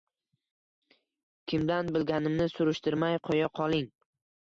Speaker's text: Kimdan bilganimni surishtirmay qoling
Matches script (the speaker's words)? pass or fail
fail